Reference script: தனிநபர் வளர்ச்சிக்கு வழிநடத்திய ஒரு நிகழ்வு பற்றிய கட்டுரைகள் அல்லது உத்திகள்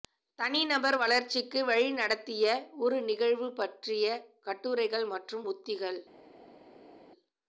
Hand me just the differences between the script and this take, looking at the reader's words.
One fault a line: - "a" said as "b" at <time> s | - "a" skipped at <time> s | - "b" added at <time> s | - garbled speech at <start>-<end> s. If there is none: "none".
- "அல்லது" said as "மற்றும்" at 5.1 s